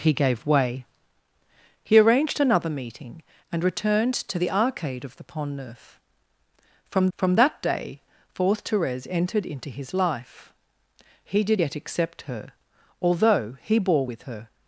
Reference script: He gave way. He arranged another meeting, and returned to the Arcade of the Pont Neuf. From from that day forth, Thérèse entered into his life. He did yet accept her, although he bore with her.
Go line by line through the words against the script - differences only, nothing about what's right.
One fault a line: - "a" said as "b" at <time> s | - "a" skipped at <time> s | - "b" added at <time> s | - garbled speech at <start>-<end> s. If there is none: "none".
none